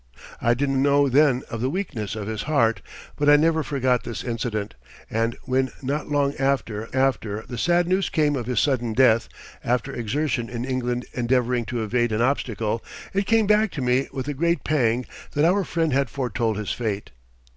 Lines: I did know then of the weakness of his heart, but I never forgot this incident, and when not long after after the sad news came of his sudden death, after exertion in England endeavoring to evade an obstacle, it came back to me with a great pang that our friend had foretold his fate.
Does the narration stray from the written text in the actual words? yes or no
no